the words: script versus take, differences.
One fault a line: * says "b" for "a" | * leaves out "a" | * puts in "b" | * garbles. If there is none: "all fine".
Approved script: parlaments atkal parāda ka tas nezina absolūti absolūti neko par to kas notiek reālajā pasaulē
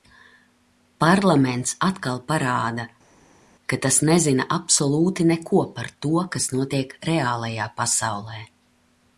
* leaves out "absolūti"